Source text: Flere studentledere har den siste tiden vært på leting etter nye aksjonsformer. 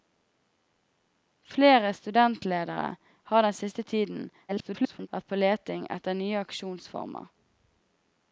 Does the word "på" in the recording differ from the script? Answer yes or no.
no